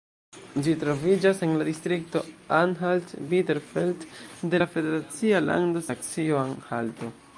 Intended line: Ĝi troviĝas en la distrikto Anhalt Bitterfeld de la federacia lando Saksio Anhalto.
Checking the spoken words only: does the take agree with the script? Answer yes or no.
yes